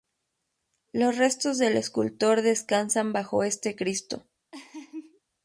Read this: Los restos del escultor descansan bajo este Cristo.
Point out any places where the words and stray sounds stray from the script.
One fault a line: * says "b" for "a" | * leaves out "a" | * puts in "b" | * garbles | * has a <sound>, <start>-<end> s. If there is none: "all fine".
* has a laugh, 4.5-5.2 s